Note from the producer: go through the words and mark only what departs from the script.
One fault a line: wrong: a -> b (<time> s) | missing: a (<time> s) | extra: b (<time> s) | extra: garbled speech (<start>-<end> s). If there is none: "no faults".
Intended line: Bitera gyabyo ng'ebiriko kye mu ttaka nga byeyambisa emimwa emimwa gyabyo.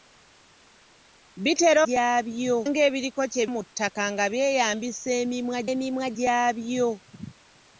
no faults